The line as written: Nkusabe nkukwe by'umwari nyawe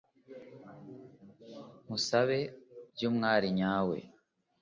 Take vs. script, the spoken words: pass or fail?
fail